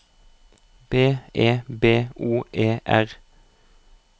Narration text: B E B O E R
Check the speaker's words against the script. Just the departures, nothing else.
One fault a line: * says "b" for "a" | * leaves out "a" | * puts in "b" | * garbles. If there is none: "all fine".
all fine